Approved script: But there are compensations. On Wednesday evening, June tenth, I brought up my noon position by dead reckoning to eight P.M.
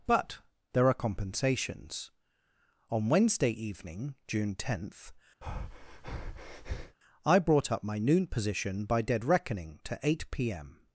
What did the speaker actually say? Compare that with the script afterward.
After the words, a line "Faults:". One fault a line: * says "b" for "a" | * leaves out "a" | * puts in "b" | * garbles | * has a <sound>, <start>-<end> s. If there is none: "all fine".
But there are compensations. On Wednesday evening, June tenth, I brought up my noon position by dead reckoning to eight P.M.
Faults:
* has a breath, 5.4-7.0 s